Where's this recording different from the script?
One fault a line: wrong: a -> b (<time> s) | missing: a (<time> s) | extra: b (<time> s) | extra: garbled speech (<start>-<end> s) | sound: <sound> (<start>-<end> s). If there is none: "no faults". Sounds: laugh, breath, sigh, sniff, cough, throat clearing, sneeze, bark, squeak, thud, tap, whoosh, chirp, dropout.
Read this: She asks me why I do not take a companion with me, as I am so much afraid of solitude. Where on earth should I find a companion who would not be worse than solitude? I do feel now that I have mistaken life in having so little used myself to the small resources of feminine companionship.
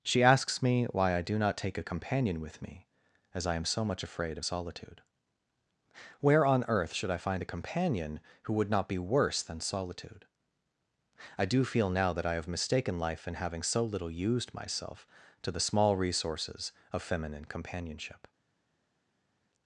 no faults